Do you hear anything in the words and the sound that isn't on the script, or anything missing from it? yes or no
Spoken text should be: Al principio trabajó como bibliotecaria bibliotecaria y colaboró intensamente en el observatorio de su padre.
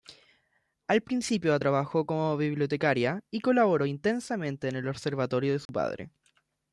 yes